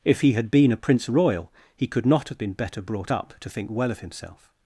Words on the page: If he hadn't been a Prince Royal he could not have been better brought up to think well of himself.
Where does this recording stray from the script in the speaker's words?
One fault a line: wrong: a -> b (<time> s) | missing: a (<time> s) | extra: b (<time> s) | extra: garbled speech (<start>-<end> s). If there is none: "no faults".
wrong: hadn't -> had (0.3 s)